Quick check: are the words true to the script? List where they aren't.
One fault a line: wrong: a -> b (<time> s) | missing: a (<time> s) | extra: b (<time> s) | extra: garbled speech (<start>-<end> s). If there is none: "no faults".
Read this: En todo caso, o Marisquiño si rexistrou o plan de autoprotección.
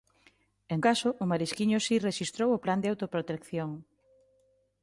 missing: todo (0.8 s)